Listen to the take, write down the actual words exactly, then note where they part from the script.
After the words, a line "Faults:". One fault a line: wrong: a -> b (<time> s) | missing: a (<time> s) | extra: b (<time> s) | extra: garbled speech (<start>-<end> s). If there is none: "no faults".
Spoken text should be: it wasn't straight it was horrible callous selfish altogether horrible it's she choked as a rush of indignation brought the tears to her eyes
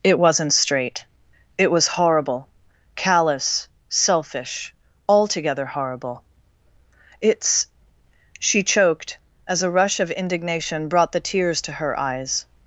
it wasn't straight it was horrible callous selfish altogether horrible it's she choked as a rush of indignation brought the tears to her eyes
Faults:
no faults